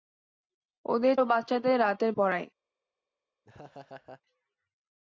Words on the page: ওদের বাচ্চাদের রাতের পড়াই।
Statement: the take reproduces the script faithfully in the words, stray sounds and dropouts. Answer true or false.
false